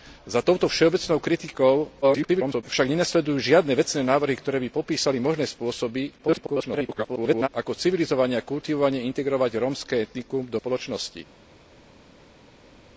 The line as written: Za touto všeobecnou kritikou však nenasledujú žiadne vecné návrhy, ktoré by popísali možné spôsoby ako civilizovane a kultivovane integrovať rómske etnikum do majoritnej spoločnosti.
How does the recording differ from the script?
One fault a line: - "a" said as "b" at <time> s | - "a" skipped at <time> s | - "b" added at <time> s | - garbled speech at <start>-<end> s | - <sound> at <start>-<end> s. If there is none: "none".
- garbled speech at 2.0-2.6 s
- garbled speech at 6.2-7.5 s
- "majoritnej" skipped at 10.6 s